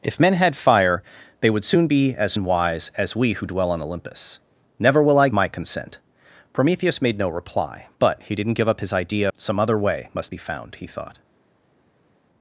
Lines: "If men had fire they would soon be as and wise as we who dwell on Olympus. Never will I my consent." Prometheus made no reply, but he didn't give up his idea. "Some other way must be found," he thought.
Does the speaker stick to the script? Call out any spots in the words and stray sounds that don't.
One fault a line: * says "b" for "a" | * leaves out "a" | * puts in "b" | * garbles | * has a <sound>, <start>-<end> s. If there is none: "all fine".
all fine